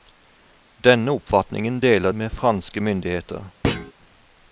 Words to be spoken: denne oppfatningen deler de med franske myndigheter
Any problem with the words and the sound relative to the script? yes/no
yes